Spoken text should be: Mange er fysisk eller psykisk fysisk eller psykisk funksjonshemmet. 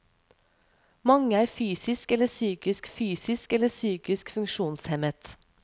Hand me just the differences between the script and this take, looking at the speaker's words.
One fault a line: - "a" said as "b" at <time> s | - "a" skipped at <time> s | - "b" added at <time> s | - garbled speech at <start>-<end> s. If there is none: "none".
none